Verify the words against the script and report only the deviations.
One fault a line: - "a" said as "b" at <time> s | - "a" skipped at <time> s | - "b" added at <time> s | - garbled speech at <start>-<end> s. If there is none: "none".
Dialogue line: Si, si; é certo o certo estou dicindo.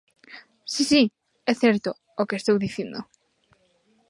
- "certo" said as "que" at 2.3 s